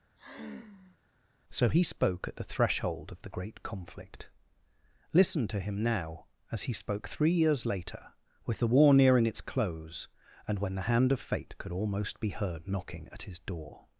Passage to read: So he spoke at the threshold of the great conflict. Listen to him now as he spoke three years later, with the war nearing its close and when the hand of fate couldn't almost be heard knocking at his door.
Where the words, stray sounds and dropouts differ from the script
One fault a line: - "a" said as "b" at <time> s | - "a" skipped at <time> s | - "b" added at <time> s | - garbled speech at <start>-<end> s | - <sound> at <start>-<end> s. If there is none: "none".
- sigh at 0.2-1.0 s
- "couldn't" said as "could" at 11.6 s